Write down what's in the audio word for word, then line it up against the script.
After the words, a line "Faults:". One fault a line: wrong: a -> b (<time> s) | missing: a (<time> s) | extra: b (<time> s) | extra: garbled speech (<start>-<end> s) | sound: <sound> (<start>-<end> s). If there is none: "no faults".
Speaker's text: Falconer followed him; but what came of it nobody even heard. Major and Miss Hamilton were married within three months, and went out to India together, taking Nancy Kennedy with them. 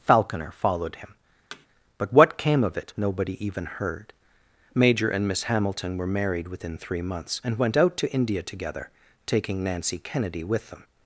Falconer followed him; but what came of it nobody even heard. Major and Miss Hamilton were married within three months, and went out to India together, taking Nancy Kennedy with them.
Faults:
sound: thud (1.5-1.7 s)